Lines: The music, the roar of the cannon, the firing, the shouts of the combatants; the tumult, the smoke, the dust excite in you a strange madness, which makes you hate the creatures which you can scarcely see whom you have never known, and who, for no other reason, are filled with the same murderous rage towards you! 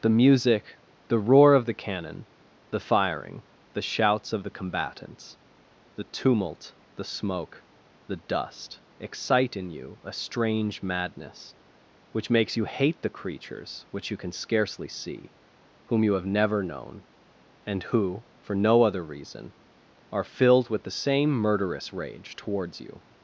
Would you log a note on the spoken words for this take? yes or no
no